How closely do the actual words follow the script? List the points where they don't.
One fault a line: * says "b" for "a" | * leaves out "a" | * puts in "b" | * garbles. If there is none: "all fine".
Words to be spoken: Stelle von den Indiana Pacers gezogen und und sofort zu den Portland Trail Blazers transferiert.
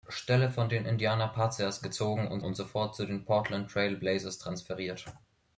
all fine